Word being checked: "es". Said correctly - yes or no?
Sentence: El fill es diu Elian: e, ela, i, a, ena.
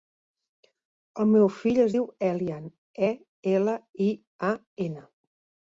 yes